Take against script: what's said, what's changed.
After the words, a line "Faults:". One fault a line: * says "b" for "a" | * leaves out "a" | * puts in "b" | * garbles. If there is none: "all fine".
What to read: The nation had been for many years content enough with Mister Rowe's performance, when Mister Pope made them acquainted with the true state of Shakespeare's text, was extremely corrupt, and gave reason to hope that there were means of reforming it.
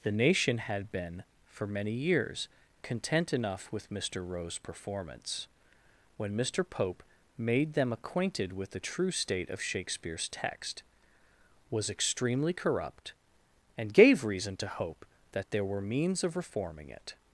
The nation had been for many years content enough with Mister Rowe's performance, when Mister Pope made them acquainted with the true state of Shakespeare's text, was extremely corrupt, and gave reason to hope that there were means of reforming it.
Faults:
all fine